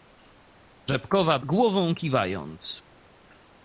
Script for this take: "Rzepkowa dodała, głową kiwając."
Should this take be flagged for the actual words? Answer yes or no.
yes